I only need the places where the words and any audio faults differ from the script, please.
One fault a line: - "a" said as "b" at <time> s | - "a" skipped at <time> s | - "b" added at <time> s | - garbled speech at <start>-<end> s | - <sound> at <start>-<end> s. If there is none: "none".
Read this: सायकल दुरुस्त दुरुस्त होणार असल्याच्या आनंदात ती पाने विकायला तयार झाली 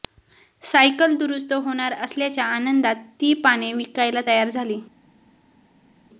- "दुरुस्त" skipped at 1.5 s